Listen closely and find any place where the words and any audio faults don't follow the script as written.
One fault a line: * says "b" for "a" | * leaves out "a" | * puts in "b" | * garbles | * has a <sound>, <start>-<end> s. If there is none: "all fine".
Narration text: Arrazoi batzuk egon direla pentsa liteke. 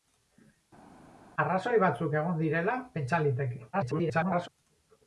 * garbles